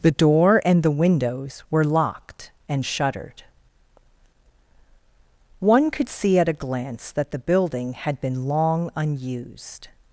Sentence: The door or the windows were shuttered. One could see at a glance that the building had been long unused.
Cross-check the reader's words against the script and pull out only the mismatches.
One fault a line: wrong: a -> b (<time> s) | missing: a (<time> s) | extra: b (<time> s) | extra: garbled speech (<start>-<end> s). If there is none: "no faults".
wrong: or -> and (0.7 s)
extra: locked and (1.8 s)